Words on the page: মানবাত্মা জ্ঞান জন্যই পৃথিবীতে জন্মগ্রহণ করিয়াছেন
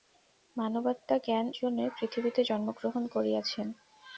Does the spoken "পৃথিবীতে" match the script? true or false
true